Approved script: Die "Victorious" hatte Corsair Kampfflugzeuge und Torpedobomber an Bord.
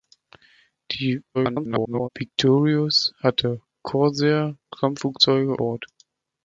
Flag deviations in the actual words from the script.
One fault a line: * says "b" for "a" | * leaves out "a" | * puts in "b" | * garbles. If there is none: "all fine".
* garbles
* leaves out "und Torpedobomber an"